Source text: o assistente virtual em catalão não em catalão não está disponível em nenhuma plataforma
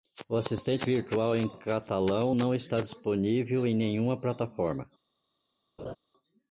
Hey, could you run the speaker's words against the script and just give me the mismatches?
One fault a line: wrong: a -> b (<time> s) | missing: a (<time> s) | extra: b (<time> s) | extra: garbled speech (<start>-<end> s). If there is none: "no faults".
missing: em catalão não (2.5 s)